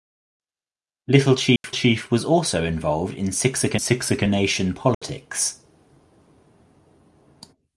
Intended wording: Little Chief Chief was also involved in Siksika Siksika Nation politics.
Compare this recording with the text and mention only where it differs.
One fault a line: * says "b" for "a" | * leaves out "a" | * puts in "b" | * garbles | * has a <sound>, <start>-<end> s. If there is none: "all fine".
* has a dropout, 1.6-1.6 s
* has a dropout, 4.9-5.0 s